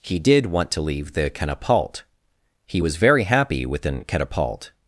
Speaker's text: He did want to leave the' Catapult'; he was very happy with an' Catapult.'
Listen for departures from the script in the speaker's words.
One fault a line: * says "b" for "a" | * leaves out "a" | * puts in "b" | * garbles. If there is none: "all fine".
all fine